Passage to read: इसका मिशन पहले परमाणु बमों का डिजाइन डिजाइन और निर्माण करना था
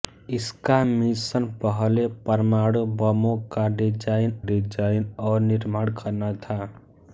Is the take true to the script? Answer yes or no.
yes